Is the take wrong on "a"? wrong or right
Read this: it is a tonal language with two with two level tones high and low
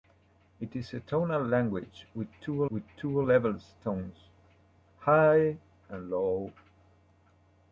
right